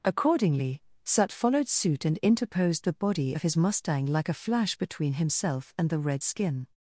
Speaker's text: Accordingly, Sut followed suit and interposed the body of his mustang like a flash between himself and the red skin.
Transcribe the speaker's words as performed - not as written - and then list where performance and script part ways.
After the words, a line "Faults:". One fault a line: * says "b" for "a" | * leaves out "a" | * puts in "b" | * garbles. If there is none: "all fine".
Accordingly, Sut followed suit and interposed the body of his mustang like a flash between himself and the red skin.
Faults:
all fine